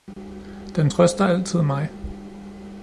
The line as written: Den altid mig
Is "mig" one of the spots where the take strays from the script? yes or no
no